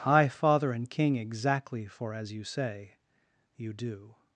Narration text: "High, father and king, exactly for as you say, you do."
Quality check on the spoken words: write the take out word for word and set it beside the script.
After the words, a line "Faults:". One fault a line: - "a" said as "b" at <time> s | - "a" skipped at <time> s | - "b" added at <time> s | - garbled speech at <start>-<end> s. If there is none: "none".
"High, father and king, exactly for as you say, you do."
Faults:
none